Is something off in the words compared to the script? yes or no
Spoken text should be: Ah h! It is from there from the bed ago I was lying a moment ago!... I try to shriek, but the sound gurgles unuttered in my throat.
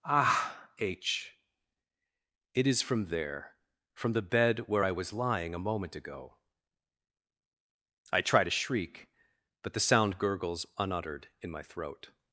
yes